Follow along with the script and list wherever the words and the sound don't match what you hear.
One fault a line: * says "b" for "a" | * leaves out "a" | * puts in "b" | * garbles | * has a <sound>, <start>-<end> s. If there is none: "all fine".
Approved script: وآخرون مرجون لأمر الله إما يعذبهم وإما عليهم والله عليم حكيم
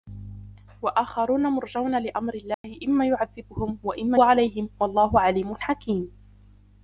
* has a dropout, 2.5-2.6 s